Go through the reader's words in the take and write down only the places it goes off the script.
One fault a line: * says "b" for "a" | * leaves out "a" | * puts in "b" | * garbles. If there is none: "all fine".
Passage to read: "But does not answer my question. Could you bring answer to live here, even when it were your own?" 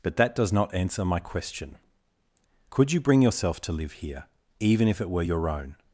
* puts in "that"
* says "yourself" for "answer"
* says "if" for "when"